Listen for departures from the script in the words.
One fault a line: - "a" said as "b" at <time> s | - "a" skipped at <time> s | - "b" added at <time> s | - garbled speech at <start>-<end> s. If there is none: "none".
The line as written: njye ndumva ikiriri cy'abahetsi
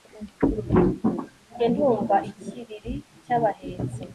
none